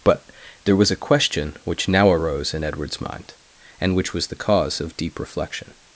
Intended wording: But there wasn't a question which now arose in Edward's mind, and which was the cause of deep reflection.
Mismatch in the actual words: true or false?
true